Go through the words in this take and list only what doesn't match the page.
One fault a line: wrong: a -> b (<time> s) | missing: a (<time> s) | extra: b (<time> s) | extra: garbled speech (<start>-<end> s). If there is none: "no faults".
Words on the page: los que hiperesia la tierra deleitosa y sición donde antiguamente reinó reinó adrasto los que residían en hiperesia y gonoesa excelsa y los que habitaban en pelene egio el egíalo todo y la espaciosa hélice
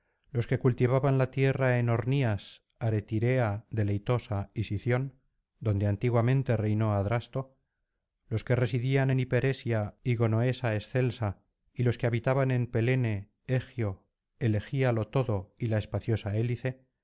wrong: hiperesia -> cultivaban (0.6 s)
extra: en ornías aretirea (1.8 s)
missing: reinó (6.9 s)